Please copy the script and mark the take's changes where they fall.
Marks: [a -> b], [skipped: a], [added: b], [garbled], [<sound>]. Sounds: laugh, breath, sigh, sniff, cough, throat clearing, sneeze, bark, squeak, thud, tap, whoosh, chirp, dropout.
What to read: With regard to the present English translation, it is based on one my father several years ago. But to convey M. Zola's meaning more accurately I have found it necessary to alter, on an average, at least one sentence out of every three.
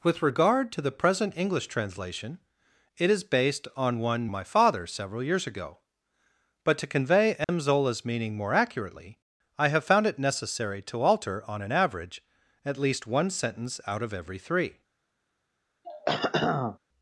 With regard to the present English translation, it is based on one my father several years ago. But to convey M. [dropout] Zola's meaning more accurately I have found it necessary to alter, on an average, at least one sentence out of every three. [throat clearing]